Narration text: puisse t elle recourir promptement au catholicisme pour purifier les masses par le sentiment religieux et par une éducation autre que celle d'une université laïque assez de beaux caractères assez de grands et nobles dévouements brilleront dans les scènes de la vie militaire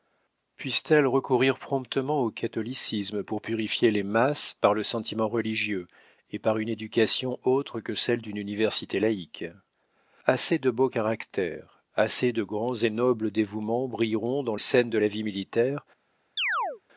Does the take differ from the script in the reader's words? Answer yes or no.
yes